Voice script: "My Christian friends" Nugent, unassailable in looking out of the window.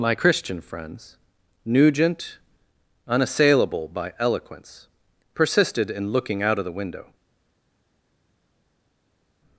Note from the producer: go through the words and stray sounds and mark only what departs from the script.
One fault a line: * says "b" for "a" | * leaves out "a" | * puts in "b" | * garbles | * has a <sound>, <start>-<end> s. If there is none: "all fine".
* puts in "by eloquence persisted"